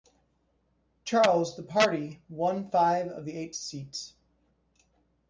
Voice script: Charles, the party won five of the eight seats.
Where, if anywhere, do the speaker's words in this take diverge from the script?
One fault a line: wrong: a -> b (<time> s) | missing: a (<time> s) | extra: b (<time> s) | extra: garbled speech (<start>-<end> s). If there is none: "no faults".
no faults